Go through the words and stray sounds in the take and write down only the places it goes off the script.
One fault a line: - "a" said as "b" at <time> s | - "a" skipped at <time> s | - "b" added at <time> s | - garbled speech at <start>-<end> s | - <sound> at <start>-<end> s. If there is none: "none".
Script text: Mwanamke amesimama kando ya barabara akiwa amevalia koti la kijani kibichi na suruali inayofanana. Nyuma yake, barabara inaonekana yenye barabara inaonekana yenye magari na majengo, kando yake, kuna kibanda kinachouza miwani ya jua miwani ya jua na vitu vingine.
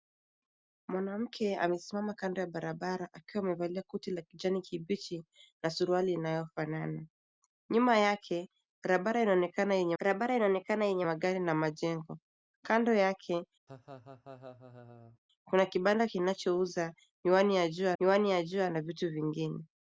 - laugh at 13.7-15.2 s